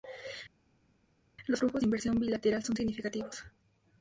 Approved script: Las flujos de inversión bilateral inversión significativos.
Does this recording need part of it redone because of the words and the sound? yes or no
yes